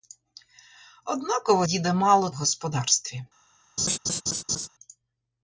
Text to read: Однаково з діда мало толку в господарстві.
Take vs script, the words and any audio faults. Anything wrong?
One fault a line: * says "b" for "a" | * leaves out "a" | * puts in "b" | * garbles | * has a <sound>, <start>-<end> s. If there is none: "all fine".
* leaves out "з"
* leaves out "толку"
* has a laugh, 3.8-4.7 s